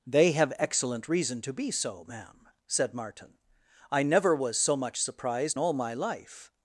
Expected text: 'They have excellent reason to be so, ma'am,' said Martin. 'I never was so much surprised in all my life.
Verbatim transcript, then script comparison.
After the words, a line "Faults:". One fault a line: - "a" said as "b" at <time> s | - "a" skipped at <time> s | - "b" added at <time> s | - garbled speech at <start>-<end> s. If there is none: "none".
'They have excellent reason to be so, ma'am,' said Martin. 'I never was so much surprised all my life.
Faults:
- "in" skipped at 5.6 s